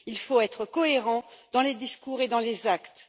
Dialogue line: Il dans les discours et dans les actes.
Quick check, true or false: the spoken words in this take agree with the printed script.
false